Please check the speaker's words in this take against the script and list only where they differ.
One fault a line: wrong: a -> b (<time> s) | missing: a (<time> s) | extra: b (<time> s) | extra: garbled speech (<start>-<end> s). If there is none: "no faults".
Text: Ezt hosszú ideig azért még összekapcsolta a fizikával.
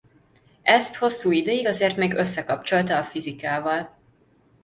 no faults